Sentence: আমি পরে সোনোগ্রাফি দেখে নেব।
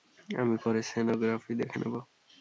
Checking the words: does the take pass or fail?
pass